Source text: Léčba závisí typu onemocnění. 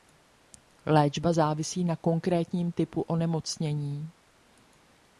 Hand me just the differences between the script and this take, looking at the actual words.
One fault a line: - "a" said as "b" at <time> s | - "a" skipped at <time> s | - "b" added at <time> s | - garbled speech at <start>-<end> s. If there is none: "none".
- "na konkrétním" added at 1.8 s